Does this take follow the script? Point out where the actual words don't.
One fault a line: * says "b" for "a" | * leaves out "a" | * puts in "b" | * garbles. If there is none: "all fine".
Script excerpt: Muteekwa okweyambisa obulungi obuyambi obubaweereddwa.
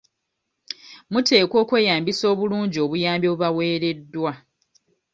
all fine